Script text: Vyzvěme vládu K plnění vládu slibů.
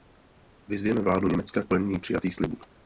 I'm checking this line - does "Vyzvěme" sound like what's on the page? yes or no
yes